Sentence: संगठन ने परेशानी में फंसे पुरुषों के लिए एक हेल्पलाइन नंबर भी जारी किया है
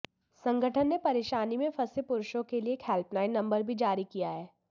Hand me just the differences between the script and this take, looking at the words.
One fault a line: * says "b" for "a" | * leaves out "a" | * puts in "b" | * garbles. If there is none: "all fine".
all fine